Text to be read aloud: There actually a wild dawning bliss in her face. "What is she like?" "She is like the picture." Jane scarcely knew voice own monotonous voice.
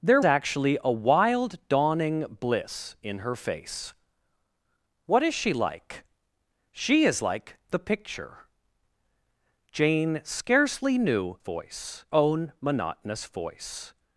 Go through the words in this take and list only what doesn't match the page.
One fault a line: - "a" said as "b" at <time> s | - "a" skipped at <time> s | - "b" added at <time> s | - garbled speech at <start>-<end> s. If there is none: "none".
none